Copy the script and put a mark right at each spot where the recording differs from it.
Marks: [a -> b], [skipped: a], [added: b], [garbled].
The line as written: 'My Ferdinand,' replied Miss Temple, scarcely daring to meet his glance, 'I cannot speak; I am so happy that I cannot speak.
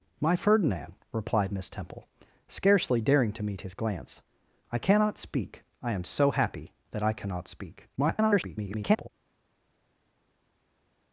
'My Ferdinand,' replied Miss Temple, scarcely daring to meet his glance, 'I cannot speak; I am so happy that I cannot speak. [garbled]